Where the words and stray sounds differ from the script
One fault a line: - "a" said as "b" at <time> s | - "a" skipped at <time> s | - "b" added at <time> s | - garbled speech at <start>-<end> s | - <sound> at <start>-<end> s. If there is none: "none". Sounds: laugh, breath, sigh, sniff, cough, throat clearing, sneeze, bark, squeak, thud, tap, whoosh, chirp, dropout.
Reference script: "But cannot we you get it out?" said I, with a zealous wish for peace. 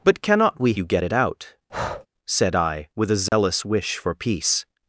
- breath at 1.7-2.1 s
- dropout at 3.3-3.3 s